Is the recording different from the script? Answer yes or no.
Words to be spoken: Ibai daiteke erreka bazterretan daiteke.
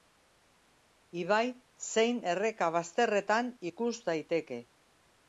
yes